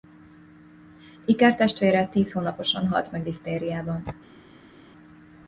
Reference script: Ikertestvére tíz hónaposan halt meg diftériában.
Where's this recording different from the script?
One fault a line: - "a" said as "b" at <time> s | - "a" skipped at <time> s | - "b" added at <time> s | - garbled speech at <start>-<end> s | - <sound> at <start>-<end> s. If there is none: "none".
none